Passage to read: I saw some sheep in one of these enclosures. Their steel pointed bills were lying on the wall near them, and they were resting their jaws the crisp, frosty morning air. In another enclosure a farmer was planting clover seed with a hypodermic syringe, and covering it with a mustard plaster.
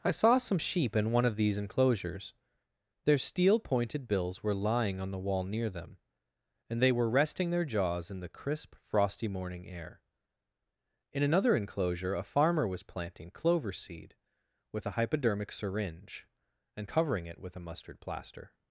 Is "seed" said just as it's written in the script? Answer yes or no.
yes